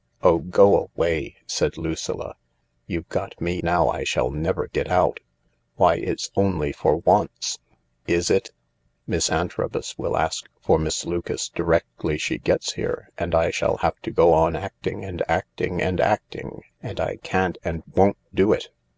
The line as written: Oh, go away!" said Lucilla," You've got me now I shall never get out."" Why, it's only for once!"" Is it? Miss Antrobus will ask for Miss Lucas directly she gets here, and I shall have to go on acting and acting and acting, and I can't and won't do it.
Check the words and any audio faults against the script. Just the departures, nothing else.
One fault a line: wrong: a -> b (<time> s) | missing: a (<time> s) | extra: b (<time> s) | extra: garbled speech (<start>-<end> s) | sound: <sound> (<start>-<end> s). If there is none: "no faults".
no faults